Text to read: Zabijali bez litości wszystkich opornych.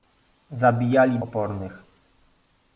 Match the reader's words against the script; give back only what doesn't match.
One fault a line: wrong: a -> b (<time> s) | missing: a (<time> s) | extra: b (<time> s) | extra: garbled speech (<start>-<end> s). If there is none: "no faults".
missing: bez litości wszystkich (1.2 s)